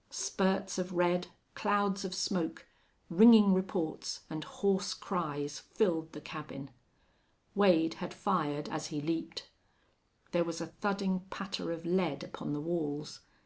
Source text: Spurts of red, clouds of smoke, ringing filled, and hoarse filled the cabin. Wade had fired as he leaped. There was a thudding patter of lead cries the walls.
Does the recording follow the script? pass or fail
fail